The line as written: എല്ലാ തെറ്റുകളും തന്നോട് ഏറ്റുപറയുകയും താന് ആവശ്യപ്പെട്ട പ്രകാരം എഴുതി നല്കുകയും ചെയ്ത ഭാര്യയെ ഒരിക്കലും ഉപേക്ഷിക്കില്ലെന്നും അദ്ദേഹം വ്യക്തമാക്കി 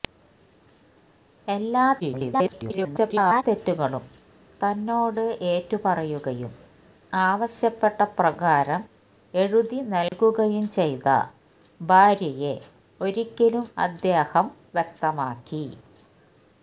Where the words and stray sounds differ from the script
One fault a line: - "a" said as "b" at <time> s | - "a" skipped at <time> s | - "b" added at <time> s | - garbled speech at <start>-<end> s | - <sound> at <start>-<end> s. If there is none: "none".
- garbled speech at 2.0-3.4 s
- "താന്" skipped at 6.5 s
- dropout at 10.1-10.1 s
- "ഉപേക്ഷിക്കില്ലെന്നും" skipped at 13.7 s